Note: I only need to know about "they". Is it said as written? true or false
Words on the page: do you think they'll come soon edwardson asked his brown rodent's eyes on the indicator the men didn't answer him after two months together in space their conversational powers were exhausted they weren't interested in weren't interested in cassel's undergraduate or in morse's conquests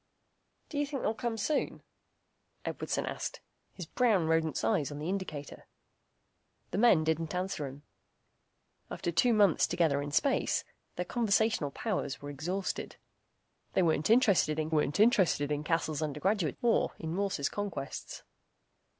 true